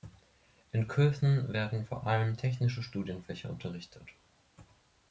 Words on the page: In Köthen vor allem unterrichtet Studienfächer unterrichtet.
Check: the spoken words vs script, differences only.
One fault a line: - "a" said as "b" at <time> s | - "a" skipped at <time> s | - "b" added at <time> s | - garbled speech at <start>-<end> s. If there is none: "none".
- "werden" added at 1.5 s
- "unterrichtet" said as "technische" at 2.4 s